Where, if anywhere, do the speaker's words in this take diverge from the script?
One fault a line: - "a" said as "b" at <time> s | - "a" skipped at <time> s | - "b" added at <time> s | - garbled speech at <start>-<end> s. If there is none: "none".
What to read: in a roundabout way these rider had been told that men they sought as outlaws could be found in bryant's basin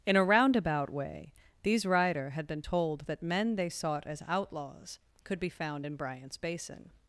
none